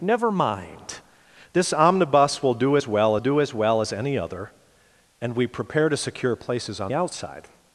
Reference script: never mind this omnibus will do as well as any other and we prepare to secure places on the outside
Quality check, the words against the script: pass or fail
fail